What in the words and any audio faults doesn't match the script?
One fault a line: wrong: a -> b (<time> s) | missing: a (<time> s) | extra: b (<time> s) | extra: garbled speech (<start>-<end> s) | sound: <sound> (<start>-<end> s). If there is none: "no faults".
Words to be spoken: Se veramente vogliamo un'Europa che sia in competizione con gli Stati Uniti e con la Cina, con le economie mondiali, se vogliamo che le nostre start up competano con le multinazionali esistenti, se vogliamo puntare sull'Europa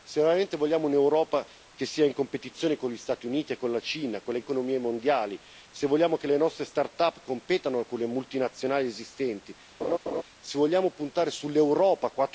sound: laugh (9.8-10.2 s)